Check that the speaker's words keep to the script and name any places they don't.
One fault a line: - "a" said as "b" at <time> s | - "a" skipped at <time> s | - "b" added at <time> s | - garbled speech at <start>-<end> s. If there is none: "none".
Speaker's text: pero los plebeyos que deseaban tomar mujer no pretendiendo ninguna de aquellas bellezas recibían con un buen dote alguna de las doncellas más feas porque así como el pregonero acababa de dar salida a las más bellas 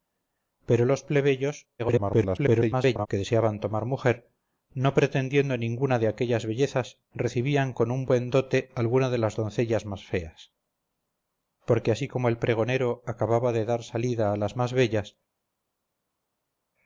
- garbled speech at 1.8-3.1 s